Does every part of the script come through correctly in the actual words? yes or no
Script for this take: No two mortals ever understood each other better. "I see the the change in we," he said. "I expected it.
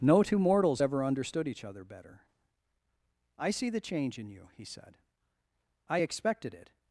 no